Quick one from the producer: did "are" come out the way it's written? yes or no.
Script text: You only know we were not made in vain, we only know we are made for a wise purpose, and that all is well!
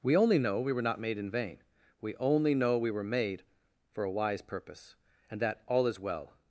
no